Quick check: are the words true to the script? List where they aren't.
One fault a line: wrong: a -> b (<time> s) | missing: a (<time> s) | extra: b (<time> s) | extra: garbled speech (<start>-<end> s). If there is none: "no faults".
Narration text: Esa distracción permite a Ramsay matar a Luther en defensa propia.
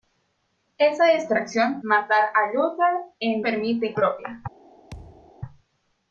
missing: permite a Ramsay (1.8 s)
wrong: defensa -> permite (3.4 s)